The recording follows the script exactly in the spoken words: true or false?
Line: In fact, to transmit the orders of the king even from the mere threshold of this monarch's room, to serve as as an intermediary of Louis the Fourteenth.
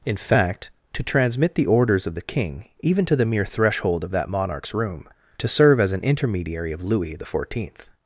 false